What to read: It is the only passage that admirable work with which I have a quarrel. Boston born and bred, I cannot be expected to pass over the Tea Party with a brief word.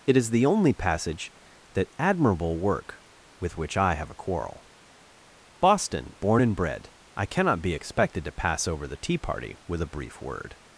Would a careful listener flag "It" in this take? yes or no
no